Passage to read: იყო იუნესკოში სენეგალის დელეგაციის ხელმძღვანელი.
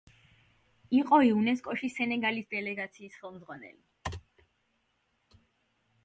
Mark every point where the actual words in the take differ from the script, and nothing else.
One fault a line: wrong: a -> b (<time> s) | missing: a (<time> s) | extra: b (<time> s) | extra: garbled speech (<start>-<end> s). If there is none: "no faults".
no faults